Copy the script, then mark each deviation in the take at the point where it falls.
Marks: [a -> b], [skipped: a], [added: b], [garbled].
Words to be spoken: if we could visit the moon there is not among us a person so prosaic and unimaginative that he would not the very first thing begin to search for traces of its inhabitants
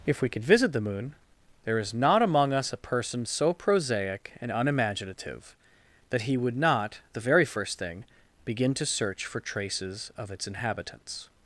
if we could visit the moon there is not among us a person so prosaic and unimaginative that he would not the very first thing begin to search for traces of its inhabitants